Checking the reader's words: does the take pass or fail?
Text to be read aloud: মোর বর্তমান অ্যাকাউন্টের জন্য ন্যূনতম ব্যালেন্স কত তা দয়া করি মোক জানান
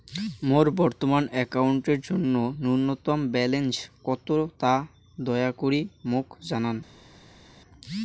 pass